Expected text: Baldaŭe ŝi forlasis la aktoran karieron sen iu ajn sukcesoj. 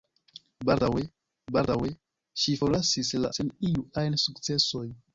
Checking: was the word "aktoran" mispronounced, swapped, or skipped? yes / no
yes